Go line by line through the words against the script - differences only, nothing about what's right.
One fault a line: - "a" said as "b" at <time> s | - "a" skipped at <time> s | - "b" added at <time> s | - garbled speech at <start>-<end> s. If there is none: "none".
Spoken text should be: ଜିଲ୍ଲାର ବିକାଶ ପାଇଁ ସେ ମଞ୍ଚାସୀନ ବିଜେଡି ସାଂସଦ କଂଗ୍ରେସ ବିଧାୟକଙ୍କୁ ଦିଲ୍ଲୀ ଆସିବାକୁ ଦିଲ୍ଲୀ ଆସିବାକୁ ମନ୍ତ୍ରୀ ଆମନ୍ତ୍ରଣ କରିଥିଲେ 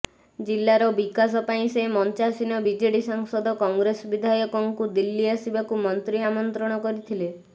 - "ଦିଲ୍ଲୀ ଆସିବାକୁ" skipped at 5.8 s